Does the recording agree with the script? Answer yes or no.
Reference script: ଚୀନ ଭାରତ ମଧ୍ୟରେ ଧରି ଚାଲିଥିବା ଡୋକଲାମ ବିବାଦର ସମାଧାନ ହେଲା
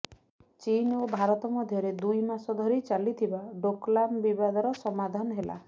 no